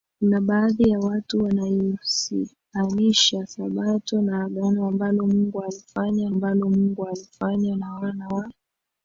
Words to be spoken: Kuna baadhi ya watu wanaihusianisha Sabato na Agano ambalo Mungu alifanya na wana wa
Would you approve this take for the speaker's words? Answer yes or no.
no